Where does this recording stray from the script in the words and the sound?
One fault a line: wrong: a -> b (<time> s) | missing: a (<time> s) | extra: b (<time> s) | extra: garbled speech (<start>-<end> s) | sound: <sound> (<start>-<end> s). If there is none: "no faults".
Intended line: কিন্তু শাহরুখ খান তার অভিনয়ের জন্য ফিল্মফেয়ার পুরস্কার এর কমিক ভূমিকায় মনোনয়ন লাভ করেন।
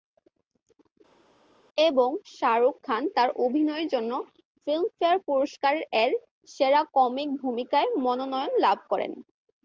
wrong: কিন্তু -> এবং (1.8 s)
extra: সেরা (6.5 s)